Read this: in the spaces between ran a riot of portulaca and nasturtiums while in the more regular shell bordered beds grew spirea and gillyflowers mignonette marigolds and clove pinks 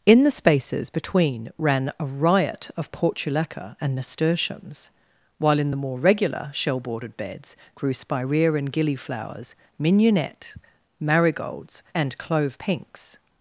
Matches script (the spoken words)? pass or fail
pass